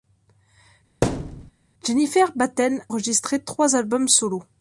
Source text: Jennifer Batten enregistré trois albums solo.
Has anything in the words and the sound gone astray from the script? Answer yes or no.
yes